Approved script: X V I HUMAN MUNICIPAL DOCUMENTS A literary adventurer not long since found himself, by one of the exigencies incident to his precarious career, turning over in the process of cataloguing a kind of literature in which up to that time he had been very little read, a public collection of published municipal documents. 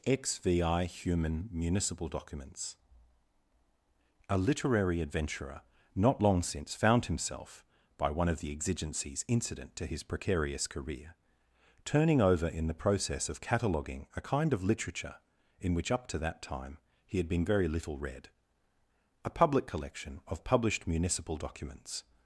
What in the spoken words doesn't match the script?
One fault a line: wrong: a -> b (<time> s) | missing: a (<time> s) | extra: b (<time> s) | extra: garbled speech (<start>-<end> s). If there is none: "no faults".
no faults